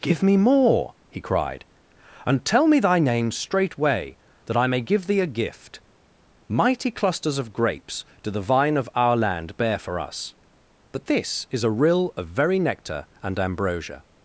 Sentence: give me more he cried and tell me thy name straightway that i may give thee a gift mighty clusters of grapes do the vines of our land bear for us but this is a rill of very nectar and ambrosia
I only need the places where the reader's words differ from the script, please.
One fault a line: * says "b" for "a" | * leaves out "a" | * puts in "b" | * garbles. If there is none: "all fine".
* says "vine" for "vines"